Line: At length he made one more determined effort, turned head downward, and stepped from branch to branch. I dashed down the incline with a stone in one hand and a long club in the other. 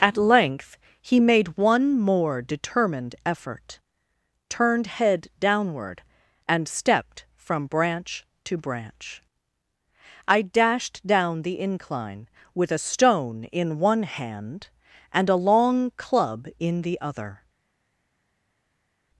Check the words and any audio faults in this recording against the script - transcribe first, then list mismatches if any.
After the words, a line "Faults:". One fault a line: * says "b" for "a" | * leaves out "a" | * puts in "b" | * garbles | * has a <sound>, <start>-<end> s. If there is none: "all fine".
At length he made one more determined effort, turned head downward, and stepped from branch to branch. I dashed down the incline with a stone in one hand and a long club in the other.
Faults:
all fine